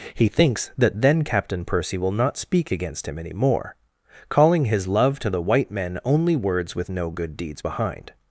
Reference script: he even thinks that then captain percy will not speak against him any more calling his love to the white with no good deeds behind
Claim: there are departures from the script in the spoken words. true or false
true